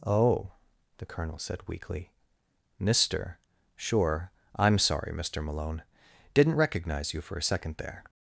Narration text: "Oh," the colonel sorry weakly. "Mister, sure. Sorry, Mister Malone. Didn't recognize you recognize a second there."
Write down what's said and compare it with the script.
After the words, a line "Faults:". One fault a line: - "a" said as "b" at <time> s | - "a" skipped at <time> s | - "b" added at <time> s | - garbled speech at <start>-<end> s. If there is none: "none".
"Oh," the colonel said weakly. "Mister, sure. I'm sorry, Mister Malone. Didn't recognize you for a second there."
Faults:
- "sorry" said as "said" at 1.4 s
- "I'm" added at 4.5 s
- "recognize" said as "for" at 7.2 s